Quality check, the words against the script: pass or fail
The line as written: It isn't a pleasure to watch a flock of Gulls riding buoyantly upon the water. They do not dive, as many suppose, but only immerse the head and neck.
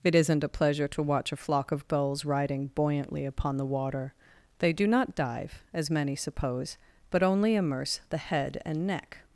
pass